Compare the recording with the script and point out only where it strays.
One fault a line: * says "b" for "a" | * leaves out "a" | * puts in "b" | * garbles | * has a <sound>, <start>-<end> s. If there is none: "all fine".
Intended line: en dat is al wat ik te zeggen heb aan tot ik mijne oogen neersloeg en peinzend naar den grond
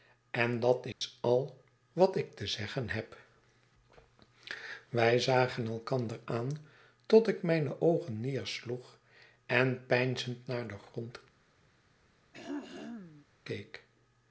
* has a dropout, 0.9-1.0 s
* puts in "wij zagen elkander"
* has a throat clearing, 12.3-13.3 s